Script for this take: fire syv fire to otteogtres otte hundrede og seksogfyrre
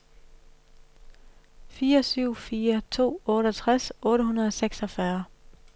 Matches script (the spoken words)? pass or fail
pass